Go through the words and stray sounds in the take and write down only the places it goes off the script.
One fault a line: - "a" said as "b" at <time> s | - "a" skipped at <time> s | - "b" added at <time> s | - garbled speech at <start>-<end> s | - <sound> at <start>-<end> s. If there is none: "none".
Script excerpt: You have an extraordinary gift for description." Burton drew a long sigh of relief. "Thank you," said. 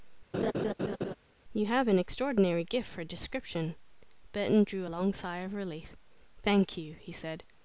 - laugh at 0.3-1.1 s
- "he" added at 6.9 s